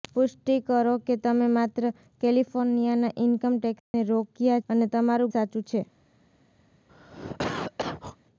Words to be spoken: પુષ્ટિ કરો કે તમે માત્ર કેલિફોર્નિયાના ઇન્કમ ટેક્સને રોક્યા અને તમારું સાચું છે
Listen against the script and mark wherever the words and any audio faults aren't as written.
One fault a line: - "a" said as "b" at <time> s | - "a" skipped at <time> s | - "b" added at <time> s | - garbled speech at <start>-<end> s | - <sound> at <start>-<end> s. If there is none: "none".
- dropout at 3.8-3.9 s
- cough at 6.9-8.2 s